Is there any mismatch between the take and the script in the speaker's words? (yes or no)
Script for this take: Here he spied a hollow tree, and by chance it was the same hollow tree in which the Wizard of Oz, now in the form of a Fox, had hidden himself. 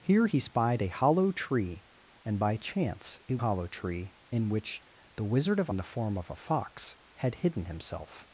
yes